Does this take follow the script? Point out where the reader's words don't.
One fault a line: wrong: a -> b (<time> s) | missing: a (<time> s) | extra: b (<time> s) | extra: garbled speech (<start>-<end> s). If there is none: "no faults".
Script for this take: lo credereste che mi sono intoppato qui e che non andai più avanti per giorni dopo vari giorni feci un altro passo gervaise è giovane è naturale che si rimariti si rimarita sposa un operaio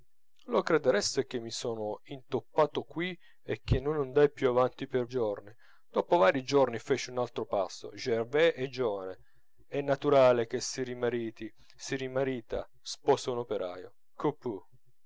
no faults